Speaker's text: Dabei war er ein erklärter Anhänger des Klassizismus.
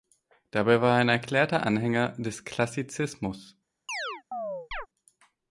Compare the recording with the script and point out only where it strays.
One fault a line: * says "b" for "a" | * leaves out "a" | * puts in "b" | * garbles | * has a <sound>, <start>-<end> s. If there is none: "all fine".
* has a chirp, 3.9-4.9 s